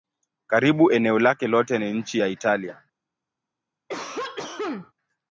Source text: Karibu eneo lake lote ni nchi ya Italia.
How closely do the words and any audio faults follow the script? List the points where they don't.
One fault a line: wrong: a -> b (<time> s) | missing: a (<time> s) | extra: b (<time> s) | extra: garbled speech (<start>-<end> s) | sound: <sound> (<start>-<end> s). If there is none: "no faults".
sound: cough (3.9-4.9 s)